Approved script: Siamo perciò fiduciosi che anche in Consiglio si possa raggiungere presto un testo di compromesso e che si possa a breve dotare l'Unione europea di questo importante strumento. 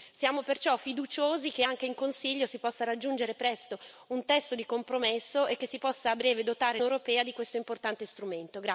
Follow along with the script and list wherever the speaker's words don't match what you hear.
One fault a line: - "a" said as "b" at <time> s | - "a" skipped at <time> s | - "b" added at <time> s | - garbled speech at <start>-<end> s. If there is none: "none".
- "l'Unione" skipped at 6.8 s